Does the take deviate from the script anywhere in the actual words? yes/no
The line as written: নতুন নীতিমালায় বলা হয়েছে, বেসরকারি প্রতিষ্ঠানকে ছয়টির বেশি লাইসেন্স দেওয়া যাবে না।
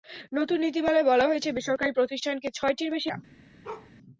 yes